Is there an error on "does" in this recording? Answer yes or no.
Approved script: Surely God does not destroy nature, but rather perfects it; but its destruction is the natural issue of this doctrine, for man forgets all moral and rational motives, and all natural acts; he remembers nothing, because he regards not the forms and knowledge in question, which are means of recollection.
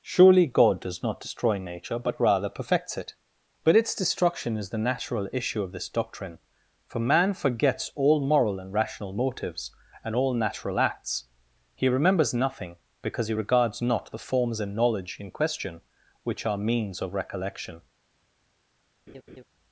no